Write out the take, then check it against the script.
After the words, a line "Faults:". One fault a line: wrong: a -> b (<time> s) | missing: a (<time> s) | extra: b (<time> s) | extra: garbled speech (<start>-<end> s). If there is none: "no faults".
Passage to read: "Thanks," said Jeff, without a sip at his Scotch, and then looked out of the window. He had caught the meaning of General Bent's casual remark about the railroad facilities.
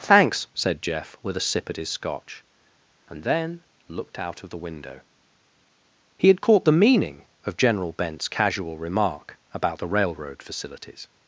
"Thanks," said Jeff, with a sip at his Scotch, and then looked out of the window. He had caught the meaning of General Bent's casual remark about the railroad facilities.
Faults:
wrong: without -> with (1.2 s)